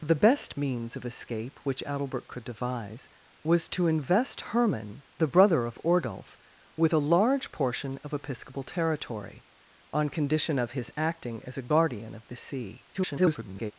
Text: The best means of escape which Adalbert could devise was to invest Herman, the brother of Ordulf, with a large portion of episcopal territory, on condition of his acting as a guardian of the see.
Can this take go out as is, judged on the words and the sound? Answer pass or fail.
fail